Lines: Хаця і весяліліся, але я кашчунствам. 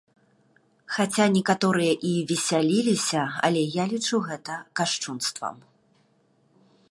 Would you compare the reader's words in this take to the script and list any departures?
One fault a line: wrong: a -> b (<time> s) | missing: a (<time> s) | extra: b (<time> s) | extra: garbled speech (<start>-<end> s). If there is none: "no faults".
extra: некаторыя (1.4 s)
extra: лічу гэта (3.9 s)